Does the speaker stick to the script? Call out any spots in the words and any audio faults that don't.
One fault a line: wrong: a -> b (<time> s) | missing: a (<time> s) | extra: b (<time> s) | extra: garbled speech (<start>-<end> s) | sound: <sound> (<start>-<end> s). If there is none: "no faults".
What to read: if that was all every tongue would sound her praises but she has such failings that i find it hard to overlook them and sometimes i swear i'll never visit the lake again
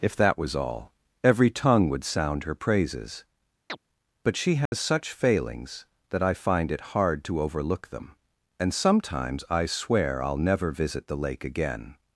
sound: chirp (3.7-3.8 s)
sound: dropout (4.7-4.7 s)